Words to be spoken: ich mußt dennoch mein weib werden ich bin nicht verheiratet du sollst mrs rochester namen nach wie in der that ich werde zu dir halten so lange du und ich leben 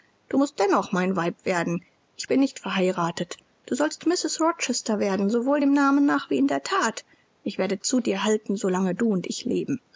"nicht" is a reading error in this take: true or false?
false